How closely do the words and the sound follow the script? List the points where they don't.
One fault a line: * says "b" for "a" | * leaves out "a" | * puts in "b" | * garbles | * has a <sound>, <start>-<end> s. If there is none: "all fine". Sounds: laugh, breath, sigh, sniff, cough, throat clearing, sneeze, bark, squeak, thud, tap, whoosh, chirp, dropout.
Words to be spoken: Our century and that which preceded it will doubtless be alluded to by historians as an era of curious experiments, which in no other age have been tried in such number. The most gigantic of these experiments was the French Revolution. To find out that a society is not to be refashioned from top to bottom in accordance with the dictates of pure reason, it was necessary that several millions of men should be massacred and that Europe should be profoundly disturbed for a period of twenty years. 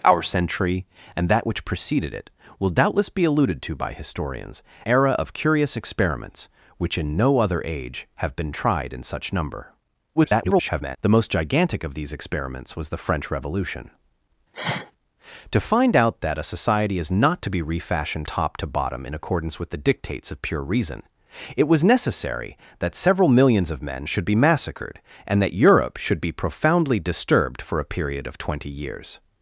* leaves out "as an"
* garbles
* has a sniff, 14.5-14.9 s
* leaves out "from"